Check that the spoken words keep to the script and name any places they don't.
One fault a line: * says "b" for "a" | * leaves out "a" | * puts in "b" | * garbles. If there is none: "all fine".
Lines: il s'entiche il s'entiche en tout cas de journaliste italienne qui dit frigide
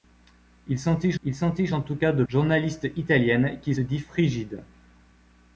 all fine